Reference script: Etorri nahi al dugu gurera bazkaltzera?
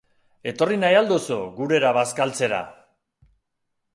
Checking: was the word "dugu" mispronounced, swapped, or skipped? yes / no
yes